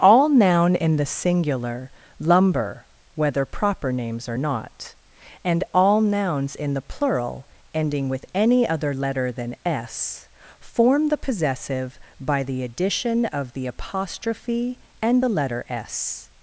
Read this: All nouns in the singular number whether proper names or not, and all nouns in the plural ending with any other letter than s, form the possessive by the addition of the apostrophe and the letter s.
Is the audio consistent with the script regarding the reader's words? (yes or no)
no